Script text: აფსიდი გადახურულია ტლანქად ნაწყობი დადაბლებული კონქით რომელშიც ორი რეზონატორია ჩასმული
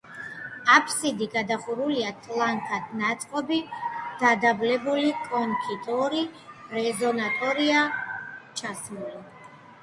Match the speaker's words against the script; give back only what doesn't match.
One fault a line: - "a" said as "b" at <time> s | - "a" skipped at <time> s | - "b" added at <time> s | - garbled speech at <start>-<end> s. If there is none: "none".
- "რომელშიც" skipped at 5.8 s